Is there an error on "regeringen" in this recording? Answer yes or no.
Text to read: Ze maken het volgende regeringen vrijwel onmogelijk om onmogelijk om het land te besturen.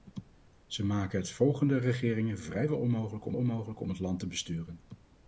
no